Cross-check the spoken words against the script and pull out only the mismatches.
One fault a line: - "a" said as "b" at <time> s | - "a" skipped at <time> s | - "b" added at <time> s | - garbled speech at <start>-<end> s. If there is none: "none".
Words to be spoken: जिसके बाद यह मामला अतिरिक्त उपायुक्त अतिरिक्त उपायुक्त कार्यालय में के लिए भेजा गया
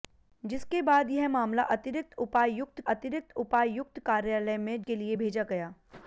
none